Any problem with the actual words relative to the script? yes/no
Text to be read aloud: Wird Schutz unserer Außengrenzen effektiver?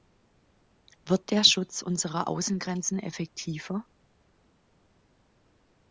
yes